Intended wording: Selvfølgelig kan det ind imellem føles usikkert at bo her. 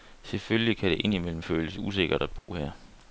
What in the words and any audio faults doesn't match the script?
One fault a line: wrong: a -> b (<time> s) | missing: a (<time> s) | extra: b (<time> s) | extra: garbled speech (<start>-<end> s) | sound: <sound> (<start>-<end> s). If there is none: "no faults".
sound: dropout (2.4-2.5 s)